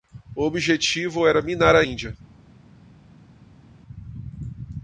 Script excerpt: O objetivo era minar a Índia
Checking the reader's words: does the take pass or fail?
pass